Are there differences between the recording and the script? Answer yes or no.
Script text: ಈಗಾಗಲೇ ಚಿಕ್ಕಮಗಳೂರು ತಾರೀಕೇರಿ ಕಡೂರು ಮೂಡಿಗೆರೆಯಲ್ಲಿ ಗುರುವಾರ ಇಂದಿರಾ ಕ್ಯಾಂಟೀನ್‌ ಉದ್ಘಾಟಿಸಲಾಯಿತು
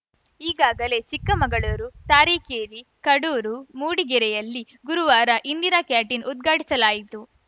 no